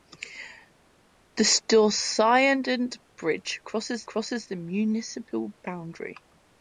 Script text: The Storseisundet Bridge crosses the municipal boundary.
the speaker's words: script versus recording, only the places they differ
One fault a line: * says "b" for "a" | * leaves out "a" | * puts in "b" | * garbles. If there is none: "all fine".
* puts in "crosses"